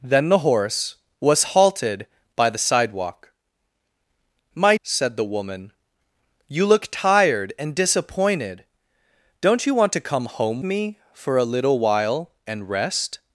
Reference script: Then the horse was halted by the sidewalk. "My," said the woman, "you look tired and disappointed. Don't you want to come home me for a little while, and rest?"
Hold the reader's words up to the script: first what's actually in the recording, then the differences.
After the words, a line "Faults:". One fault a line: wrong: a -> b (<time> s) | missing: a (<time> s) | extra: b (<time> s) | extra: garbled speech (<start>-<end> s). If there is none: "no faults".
Then the horse was halted by the sidewalk. "My," said the woman, "you look tired and disappointed. Don't you want to come home me for a little while, and rest?"
Faults:
no faults